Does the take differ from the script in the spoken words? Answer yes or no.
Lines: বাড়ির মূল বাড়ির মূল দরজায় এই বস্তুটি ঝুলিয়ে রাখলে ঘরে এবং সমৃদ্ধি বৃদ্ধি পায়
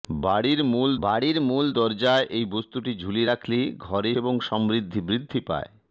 no